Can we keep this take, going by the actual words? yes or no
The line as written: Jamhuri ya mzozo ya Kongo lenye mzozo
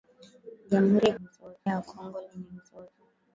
yes